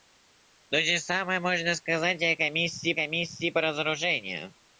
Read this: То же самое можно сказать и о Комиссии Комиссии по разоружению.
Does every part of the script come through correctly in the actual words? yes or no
yes